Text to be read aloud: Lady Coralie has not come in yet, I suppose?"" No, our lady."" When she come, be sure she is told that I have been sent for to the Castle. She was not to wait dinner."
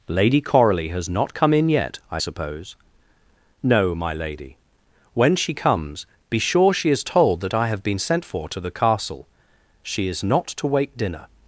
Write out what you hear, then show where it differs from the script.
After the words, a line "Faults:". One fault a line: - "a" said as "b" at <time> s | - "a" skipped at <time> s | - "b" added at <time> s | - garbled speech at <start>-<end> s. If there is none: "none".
Lady Coralie has not come in yet, I suppose?"" No, my lady."" When she comes, be sure she is told that I have been sent for to the Castle. She is not to wait dinner."
Faults:
- "our" said as "my" at 3.9 s
- "come" said as "comes" at 5.5 s
- "was" said as "is" at 10.1 s